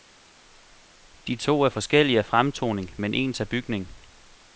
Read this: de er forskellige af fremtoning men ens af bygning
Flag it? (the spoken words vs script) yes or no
yes